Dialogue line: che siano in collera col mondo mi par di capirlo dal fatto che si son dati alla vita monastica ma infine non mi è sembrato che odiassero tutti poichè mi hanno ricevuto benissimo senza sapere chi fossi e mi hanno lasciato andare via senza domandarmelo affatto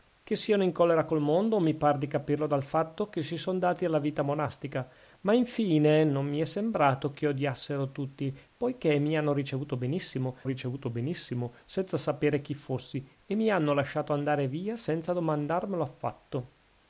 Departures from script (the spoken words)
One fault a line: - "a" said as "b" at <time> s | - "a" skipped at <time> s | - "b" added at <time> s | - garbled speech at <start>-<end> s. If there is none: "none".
- "ricevuto benissimo" added at 10.4 s